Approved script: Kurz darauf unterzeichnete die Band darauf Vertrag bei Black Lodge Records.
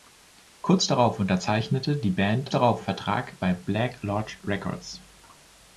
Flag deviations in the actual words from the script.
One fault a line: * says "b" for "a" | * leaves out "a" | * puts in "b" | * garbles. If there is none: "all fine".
all fine